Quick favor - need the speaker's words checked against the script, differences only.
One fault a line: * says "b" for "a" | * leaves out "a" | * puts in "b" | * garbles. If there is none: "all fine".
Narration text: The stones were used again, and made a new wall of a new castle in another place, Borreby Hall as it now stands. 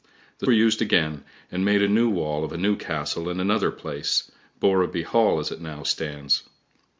* leaves out "stones"